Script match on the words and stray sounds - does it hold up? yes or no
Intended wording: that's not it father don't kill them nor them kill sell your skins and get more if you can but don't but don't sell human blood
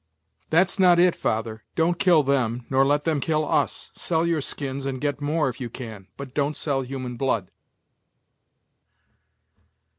no